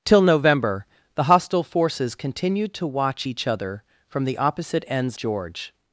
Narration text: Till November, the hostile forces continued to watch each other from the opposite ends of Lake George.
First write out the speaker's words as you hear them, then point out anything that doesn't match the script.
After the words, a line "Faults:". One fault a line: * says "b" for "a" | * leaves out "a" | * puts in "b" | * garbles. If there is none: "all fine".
Till November, the hostile forces continued to watch each other from the opposite ends George.
Faults:
* leaves out "of Lake"